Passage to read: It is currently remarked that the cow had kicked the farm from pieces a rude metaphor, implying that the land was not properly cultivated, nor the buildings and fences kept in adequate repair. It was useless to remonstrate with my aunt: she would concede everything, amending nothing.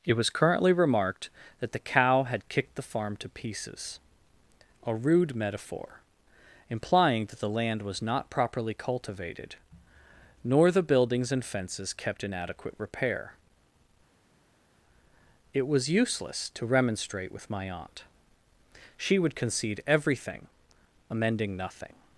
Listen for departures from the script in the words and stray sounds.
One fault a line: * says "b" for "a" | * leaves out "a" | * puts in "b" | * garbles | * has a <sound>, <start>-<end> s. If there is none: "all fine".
* says "was" for "is"
* says "to" for "from"